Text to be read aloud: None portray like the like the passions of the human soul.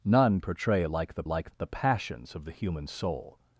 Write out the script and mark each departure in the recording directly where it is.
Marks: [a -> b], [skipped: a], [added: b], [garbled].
None portray like the like the passions of the human soul.